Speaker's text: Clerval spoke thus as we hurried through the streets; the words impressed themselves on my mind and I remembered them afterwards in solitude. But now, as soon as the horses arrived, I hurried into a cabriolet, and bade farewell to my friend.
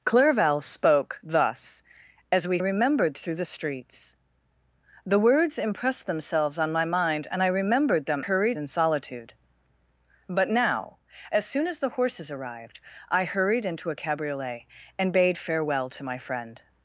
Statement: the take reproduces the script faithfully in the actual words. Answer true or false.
false